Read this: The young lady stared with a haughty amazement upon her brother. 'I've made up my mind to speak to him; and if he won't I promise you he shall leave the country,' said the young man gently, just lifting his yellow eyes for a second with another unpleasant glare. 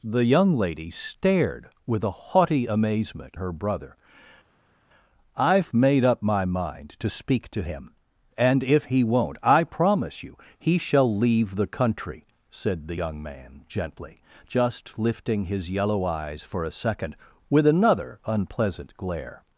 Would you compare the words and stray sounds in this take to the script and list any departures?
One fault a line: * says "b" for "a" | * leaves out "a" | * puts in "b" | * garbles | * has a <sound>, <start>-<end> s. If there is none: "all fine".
* leaves out "upon"